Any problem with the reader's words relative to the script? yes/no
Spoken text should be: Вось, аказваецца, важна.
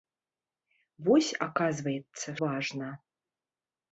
no